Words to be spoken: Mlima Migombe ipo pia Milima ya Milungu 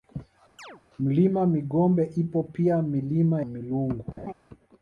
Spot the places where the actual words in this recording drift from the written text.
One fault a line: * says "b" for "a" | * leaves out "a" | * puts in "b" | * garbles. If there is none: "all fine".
* leaves out "ya"